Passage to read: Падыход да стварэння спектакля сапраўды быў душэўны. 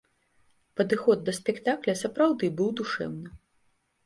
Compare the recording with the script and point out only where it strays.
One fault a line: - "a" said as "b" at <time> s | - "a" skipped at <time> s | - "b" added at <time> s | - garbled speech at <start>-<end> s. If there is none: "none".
- "стварэння" skipped at 1.3 s